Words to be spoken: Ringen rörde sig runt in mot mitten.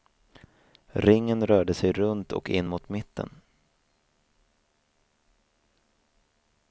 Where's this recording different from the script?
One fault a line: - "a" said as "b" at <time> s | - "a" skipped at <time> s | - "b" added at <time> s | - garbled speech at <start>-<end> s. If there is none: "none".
- "och" added at 2.3 s